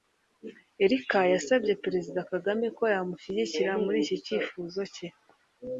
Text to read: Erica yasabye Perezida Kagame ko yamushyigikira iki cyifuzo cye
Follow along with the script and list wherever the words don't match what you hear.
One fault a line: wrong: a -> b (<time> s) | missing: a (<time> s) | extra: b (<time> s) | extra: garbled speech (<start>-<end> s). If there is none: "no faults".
extra: muri (3.8 s)